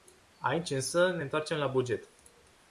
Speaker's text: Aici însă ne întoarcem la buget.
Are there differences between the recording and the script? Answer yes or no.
no